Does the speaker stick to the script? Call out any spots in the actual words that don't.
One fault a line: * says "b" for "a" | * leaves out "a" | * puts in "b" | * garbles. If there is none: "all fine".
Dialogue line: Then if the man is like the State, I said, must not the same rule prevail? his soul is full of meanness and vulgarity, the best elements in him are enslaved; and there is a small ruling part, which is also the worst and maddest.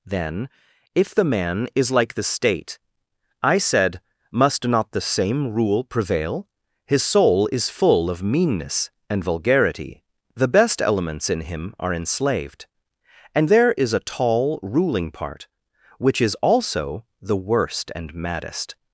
* says "tall" for "small"